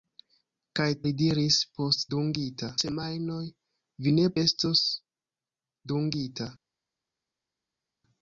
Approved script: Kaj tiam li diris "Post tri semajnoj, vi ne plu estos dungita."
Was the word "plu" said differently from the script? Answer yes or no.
yes